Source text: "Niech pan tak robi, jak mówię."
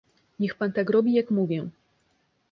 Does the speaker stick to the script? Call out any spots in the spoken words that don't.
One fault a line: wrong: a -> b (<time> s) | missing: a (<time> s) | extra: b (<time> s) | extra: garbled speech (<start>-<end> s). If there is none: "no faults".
no faults